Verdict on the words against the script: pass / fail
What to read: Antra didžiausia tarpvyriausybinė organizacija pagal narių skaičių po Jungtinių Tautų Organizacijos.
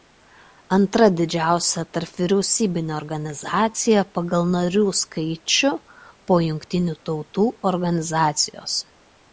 pass